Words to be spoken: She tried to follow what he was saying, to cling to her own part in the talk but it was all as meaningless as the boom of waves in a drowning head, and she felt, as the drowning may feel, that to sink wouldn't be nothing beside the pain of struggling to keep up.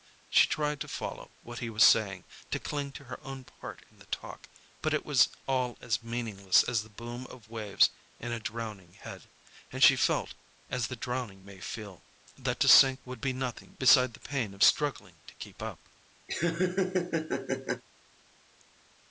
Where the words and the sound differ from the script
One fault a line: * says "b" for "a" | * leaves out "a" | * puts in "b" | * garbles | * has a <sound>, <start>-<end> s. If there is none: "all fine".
* says "would" for "wouldn't"
* has a laugh, 16.3-17.8 s